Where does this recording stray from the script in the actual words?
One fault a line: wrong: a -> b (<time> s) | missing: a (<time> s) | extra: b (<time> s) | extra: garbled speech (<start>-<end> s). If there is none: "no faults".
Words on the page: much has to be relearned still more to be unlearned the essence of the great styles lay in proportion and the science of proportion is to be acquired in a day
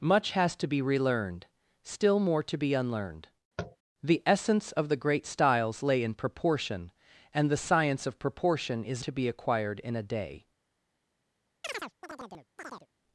no faults